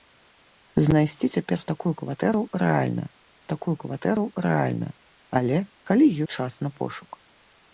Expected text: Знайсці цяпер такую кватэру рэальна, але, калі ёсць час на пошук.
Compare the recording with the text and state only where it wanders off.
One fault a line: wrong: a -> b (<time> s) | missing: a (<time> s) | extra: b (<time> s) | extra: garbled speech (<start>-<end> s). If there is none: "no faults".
extra: такую кватэру рэальна (3.5 s)
missing: ёсць (6.0 s)